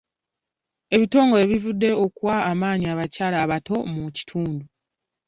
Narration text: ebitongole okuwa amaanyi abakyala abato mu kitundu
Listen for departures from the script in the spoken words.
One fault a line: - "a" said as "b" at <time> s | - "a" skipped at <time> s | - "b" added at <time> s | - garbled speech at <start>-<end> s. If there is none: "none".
- "bivuddeyo" added at 1.5 s